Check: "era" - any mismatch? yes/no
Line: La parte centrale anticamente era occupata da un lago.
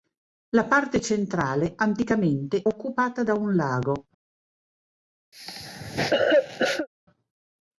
yes